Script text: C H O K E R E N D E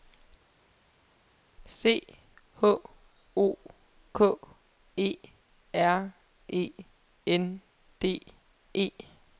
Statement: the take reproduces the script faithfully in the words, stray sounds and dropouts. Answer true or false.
true